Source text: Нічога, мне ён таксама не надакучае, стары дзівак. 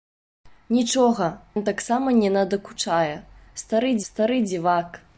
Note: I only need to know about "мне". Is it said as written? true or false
false